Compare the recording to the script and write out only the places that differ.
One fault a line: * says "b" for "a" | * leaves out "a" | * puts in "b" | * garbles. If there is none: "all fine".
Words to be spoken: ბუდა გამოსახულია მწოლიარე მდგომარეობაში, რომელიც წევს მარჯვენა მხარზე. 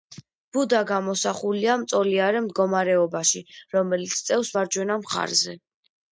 all fine